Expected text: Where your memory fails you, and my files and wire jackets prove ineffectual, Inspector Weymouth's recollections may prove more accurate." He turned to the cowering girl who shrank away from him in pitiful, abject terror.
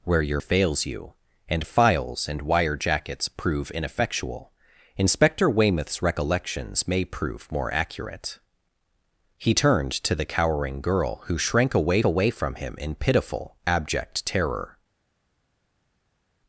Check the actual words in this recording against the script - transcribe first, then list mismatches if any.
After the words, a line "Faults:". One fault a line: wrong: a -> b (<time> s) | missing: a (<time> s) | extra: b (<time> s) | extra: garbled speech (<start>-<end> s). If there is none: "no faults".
Where your fails you, and files and wire jackets prove ineffectual, Inspector Weymouth's recollections may prove more accurate." He turned to the cowering girl who shrank away away from him in pitiful, abject terror.
Faults:
missing: memory (0.4 s)
missing: my (1.6 s)
extra: away (12.0 s)